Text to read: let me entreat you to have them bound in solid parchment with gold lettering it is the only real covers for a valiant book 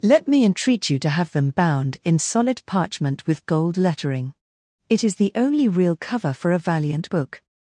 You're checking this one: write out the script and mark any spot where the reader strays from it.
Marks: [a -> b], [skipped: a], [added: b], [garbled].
let me entreat you to have them bound in solid parchment with gold lettering it is the only real [covers -> cover] for a valiant book